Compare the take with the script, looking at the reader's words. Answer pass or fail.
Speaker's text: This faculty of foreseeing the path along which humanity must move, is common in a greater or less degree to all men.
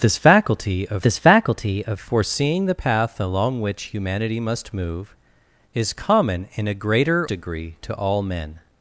fail